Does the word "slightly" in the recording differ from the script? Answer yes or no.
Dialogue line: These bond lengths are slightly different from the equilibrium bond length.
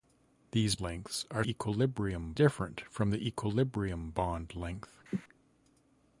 yes